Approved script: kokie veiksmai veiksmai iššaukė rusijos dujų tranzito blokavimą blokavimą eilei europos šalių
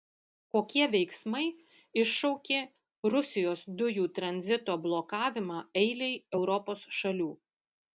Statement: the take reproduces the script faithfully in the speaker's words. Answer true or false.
false